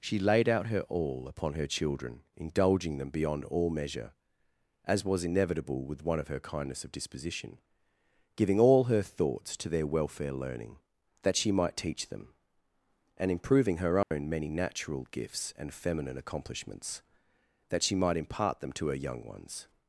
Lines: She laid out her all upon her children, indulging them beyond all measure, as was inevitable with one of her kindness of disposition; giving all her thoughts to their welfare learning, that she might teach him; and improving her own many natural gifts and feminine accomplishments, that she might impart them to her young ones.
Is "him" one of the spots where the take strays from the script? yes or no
yes